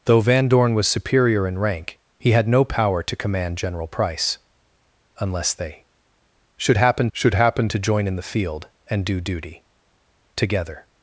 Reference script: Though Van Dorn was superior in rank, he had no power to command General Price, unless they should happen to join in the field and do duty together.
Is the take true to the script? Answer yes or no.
no